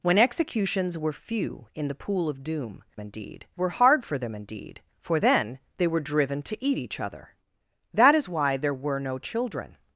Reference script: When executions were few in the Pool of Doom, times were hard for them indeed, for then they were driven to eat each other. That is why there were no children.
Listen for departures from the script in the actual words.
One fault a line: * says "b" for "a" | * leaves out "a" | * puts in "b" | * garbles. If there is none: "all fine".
* says "indeed" for "times"